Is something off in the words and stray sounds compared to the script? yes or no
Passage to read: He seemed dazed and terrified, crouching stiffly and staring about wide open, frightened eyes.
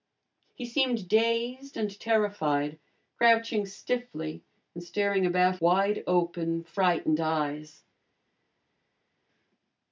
no